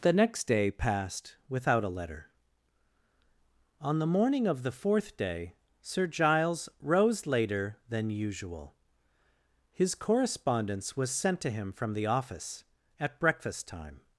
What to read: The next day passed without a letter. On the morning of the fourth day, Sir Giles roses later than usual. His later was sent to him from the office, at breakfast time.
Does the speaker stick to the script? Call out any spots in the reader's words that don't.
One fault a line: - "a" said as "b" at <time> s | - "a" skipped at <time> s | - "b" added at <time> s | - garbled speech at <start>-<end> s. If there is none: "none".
- "roses" said as "rose" at 6.8 s
- "later" said as "correspondence" at 9.9 s